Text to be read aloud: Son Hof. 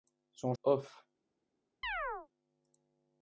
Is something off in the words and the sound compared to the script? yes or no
yes